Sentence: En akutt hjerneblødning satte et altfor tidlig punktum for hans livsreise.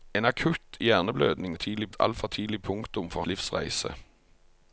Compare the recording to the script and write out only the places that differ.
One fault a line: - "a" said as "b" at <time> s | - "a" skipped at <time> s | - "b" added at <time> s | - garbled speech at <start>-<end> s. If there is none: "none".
- "satte" said as "tidlig" at 1.6 s
- "hans" skipped at 3.2 s